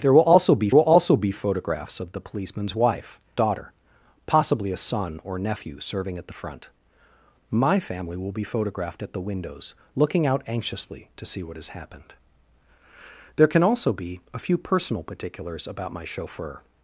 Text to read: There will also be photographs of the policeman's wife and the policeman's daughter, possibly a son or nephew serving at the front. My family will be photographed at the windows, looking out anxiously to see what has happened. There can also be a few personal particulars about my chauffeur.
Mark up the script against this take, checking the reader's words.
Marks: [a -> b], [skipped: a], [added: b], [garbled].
There will also be [added: will also be] photographs of the policeman's wife [skipped: and the policeman's] daughter, possibly a son or nephew serving at the front. My family will be photographed at the windows, looking out anxiously to see what has happened. There can also be a few personal particulars about my chauffeur.